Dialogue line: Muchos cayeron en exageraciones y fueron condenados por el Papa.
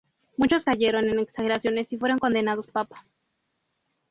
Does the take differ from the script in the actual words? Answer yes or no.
yes